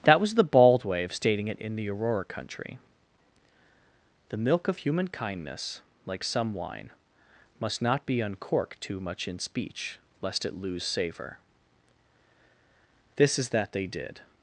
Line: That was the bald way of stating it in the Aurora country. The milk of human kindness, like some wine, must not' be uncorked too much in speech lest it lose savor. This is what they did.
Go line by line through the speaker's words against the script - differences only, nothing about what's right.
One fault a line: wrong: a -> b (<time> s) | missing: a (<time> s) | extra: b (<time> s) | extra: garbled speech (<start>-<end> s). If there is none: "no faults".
wrong: what -> that (13.5 s)